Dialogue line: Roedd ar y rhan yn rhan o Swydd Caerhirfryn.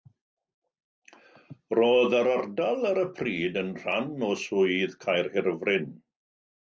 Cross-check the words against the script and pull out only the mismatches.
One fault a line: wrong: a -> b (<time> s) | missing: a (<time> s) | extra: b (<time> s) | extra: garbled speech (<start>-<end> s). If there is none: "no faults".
extra: yr ardal (2.2 s)
wrong: rhan -> pryd (3.2 s)